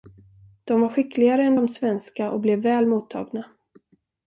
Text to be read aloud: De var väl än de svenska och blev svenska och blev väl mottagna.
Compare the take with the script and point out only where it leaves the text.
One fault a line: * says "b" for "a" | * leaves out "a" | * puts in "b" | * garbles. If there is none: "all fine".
* says "skickligare" for "väl"
* leaves out "svenska och blev"